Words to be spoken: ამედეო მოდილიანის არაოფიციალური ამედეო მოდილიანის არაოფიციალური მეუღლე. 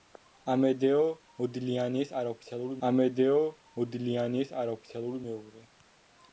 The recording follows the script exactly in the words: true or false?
true